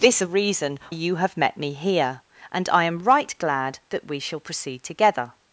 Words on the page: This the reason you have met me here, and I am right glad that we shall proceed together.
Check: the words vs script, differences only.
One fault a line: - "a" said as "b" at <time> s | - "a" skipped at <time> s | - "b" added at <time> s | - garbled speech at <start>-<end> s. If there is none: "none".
none